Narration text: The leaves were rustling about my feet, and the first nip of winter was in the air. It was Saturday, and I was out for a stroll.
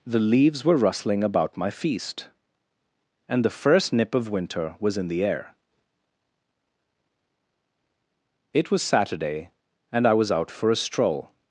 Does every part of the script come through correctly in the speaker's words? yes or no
no